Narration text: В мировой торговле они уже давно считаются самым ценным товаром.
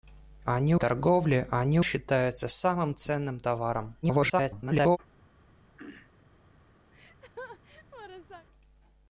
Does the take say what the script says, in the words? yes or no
no